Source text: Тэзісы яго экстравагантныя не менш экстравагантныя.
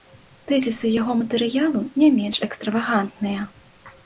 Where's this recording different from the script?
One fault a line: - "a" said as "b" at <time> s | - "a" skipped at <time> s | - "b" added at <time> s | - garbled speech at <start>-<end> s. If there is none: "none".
- "экстравагантныя" said as "матэрыялу" at 1.2 s